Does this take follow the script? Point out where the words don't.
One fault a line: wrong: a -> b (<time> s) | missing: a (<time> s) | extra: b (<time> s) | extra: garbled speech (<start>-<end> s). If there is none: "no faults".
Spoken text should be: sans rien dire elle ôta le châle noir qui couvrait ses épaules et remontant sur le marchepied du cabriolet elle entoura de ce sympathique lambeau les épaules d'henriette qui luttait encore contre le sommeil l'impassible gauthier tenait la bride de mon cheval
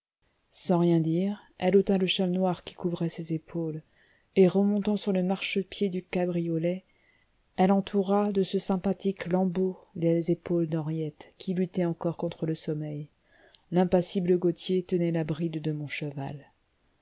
no faults